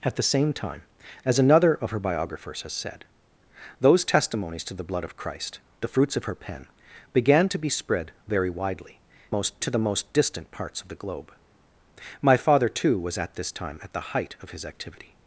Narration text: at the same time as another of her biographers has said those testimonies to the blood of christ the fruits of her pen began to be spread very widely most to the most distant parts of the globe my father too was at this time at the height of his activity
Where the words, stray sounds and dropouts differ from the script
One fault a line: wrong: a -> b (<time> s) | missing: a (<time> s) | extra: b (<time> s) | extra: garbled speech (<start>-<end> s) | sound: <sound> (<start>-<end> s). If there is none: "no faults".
no faults